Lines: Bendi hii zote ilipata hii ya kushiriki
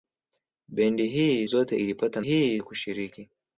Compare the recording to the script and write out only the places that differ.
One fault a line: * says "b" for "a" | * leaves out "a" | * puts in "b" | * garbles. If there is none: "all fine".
all fine